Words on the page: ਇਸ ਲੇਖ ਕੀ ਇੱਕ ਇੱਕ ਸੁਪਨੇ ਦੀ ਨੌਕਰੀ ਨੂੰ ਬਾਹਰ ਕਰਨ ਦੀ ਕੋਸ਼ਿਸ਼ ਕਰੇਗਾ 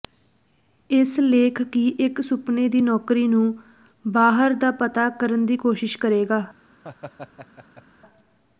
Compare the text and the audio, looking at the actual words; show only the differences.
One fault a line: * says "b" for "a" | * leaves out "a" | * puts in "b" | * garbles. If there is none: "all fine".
* leaves out "ਇੱਕ"
* puts in "ਦਾ ਪਤਾ"